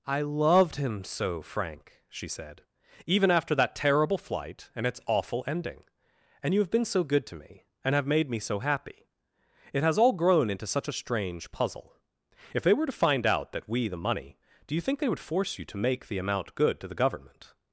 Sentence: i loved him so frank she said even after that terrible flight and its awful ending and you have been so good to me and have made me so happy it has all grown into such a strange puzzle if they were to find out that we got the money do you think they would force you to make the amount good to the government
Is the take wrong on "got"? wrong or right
wrong